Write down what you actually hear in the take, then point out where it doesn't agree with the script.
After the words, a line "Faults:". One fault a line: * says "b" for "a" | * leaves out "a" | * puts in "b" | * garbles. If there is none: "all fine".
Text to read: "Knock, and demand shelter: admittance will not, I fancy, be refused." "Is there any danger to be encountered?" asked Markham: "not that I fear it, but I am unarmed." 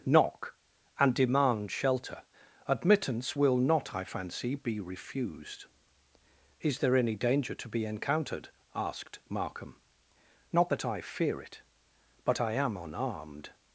"Knock, and demand shelter: admittance will not, I fancy, be refused." "Is there any danger to be encountered?" asked Markham: "not that I fear it, but I am unarmed."
Faults:
all fine